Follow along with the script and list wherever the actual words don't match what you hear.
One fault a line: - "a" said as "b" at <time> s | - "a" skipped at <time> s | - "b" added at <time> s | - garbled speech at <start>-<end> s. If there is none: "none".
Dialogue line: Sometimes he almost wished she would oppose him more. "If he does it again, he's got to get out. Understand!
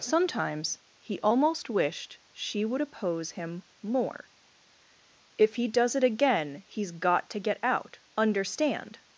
none